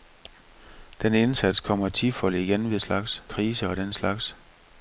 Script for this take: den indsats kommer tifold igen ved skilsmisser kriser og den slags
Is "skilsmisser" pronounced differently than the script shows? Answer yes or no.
yes